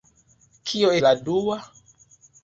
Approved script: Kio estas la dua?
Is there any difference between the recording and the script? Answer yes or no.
yes